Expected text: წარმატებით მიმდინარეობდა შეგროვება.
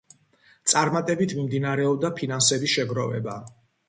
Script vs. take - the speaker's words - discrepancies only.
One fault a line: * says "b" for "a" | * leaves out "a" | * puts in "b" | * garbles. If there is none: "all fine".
* puts in "ფინანსების"